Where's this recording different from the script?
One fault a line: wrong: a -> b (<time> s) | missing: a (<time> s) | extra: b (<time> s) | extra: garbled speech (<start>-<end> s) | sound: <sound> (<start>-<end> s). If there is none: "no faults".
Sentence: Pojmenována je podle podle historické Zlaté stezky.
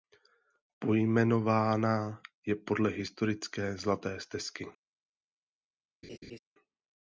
missing: podle (2.9 s)
sound: laugh (6.0-6.4 s)